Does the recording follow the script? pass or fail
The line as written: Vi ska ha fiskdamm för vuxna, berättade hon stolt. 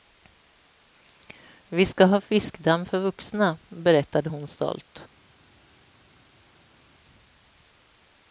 pass